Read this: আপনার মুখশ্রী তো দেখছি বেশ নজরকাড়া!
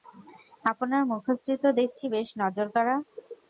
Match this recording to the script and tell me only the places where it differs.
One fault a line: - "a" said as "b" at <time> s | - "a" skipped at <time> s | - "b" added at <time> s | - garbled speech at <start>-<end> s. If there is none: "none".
none